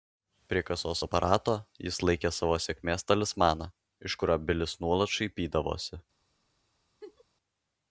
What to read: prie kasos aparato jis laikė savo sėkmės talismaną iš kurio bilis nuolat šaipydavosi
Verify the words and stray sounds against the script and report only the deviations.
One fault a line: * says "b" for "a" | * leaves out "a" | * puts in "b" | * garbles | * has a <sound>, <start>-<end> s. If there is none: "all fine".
* has a laugh, 7.0-7.2 s